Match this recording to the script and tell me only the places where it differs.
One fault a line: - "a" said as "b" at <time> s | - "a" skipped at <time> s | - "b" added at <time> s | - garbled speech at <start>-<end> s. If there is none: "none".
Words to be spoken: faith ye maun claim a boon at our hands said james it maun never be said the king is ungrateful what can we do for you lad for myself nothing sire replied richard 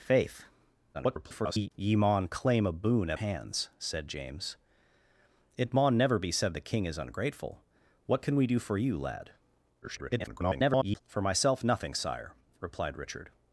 - garbled speech at 0.9-1.7 s
- "our" skipped at 3.2 s
- garbled speech at 9.8-11.0 s